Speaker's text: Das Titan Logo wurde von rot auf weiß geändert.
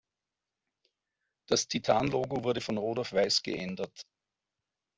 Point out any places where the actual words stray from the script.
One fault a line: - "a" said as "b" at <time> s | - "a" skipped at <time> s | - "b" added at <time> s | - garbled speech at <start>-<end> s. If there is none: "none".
none